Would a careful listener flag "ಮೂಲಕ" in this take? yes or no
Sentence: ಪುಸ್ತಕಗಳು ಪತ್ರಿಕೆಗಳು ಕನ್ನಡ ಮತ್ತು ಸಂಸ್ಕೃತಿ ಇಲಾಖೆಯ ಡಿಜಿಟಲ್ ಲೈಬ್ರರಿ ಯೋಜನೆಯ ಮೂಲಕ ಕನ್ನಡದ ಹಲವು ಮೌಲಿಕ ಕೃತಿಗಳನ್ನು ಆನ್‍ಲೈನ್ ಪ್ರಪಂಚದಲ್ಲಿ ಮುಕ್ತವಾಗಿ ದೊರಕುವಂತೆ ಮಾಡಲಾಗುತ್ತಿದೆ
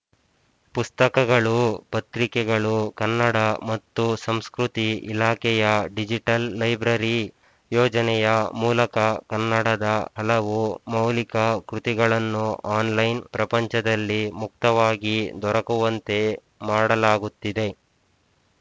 no